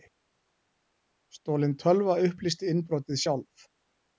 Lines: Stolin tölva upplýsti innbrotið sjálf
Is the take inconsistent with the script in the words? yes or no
no